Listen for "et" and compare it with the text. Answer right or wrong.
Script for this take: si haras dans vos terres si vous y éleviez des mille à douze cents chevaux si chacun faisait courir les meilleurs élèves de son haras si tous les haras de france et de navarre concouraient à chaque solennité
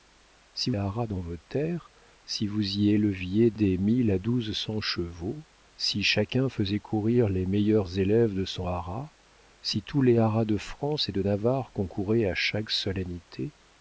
right